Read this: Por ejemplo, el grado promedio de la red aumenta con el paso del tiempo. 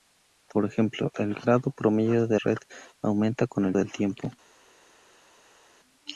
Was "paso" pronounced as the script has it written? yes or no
no